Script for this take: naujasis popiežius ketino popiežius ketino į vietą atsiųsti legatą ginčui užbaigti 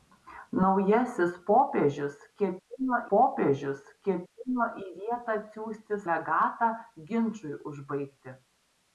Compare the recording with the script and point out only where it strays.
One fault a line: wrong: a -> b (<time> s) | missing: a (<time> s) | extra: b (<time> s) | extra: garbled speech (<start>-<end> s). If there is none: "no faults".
no faults